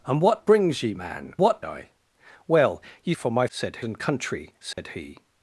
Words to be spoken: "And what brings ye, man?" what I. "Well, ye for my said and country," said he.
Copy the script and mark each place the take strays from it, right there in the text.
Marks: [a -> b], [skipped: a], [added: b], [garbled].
"And what brings ye, man?" what I. "Well, ye for my said and country," said he.